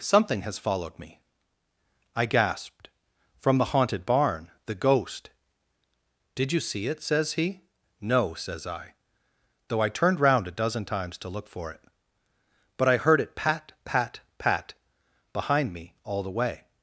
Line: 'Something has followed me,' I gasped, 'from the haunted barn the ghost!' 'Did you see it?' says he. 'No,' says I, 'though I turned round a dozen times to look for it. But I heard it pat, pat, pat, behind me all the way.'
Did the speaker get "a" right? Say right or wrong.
right